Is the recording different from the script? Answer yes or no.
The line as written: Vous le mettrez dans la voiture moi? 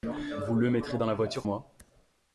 no